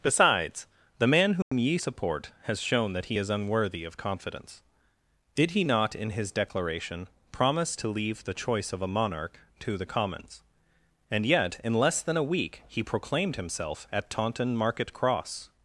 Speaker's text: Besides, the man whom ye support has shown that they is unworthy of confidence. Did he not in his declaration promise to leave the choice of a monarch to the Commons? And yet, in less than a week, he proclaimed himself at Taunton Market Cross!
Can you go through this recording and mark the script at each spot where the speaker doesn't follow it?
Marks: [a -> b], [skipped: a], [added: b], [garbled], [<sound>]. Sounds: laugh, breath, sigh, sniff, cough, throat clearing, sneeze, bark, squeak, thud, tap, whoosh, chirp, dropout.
Besides, the man whom [dropout] ye support has shown that [they -> he] is unworthy of confidence. Did he not in his declaration promise to leave the choice of a monarch to the Commons? And yet, in less than a week, he proclaimed himself at Taunton Market Cross!